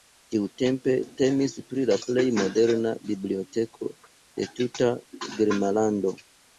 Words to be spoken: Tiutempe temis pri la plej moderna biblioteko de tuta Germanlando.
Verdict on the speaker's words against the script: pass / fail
pass